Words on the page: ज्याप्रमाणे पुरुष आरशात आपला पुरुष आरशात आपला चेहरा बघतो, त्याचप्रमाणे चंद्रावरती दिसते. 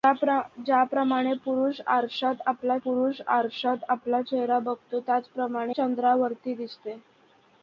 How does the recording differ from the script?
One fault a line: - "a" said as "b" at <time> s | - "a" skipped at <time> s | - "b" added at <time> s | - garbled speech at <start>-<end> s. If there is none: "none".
none